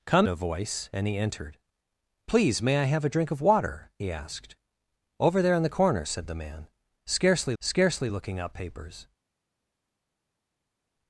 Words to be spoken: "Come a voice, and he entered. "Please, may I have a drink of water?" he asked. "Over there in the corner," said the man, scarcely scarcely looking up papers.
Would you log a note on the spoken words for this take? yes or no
no